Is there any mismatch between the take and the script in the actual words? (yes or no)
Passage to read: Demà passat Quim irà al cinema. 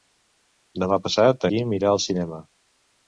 no